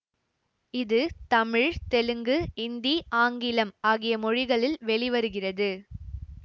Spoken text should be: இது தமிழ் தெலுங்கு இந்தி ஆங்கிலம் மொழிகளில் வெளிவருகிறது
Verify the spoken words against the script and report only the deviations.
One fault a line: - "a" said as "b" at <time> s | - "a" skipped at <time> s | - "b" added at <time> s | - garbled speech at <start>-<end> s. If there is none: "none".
- "ஆகிய" added at 3.9 s